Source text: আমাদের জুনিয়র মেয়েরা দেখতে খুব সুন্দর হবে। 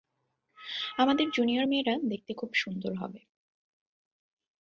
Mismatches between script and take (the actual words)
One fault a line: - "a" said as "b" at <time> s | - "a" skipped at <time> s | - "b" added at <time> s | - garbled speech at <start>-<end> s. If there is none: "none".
none